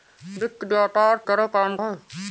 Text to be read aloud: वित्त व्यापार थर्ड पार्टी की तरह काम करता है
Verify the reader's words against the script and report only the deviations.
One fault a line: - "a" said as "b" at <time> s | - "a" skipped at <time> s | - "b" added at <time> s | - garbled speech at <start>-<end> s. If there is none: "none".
- "थर्ड पार्टी की" skipped at 1.2 s
- "करता" skipped at 1.8 s